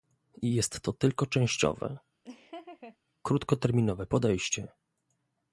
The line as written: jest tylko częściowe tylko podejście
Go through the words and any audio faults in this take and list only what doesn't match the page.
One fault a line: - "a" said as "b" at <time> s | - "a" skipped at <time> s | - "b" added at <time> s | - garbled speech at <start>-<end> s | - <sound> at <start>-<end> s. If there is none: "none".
- "to" added at 0.8 s
- laugh at 2.2-3.0 s
- "tylko" said as "krótkoterminowe" at 3.2 s